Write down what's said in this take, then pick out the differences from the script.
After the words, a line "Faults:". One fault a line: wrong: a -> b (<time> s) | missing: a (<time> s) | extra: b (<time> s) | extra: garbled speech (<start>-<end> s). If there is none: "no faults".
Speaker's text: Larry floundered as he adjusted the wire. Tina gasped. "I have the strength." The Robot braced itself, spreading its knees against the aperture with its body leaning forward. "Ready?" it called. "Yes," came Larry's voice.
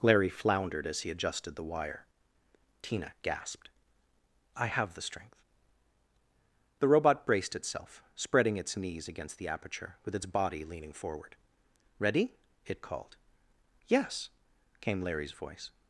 Larry floundered as he adjusted the wire. Tina gasped. "I have the strength." The Robot braced itself, spreading its knees against the aperture with its body leaning forward. "Ready?" it called. "Yes," came Larry's voice.
Faults:
no faults